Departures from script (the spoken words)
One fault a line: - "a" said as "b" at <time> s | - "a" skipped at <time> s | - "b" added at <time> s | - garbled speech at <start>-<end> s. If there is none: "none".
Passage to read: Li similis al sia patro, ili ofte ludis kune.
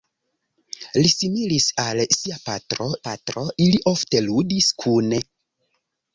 - "patro" added at 3.1 s